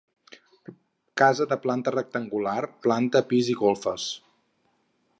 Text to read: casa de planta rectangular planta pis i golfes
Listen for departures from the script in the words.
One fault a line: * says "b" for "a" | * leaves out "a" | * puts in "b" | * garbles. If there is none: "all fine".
all fine